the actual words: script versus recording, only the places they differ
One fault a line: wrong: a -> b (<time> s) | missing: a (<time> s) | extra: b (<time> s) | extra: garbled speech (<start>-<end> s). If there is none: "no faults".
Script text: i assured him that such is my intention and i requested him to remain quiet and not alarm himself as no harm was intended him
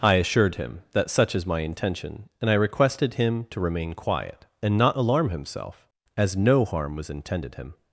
no faults